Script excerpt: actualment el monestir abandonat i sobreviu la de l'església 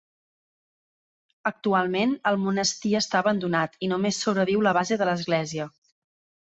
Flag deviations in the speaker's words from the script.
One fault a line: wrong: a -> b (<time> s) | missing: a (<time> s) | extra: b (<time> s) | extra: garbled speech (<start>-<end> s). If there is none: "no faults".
extra: està (3.0 s)
extra: només (4.0 s)
extra: base (4.8 s)